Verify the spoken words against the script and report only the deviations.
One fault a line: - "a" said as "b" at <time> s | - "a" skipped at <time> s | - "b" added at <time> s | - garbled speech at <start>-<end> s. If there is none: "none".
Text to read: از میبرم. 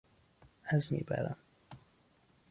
none